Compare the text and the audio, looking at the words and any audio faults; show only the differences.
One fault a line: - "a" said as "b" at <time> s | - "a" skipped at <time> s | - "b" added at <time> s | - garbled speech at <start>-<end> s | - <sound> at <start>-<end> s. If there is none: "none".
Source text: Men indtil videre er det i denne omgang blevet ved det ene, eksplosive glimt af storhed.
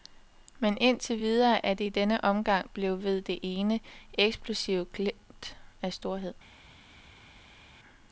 none